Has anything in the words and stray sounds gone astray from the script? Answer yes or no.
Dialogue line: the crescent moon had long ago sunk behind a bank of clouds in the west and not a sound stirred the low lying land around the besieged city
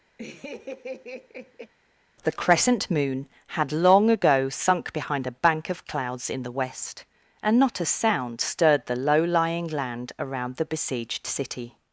yes